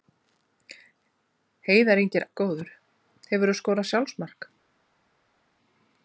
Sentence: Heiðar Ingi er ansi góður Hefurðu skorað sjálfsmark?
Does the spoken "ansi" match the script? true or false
false